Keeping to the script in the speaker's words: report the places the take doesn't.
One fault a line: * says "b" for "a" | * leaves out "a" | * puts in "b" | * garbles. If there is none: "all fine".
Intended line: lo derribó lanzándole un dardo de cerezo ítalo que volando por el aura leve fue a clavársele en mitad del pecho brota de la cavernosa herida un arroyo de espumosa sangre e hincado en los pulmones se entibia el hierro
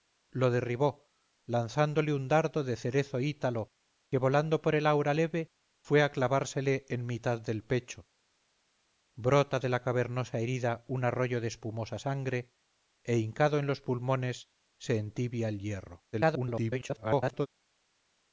* garbles